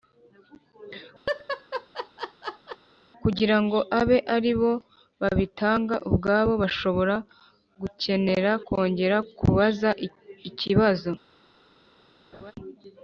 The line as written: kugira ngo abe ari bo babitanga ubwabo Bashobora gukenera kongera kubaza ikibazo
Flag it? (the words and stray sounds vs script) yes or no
yes